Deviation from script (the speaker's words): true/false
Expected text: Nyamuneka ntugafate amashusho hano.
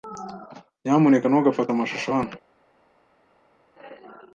false